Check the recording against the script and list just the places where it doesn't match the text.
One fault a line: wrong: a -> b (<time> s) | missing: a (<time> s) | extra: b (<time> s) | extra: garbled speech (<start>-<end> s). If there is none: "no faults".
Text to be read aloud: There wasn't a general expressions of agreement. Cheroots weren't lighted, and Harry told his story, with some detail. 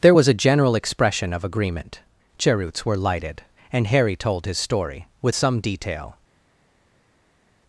wrong: wasn't -> was (0.1 s)
wrong: expressions -> expression (0.8 s)
wrong: weren't -> were (2.8 s)